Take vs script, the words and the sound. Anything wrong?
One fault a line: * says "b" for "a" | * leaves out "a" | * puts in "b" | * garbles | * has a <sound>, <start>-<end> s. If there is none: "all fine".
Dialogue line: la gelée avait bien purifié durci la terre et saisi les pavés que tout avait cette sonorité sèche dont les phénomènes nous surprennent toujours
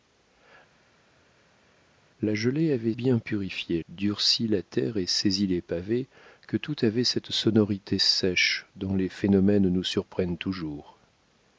all fine